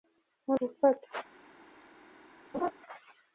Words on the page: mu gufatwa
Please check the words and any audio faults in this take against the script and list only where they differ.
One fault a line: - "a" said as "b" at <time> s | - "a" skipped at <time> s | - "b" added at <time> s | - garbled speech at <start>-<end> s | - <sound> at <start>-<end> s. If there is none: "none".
- laugh at 2.5-2.7 s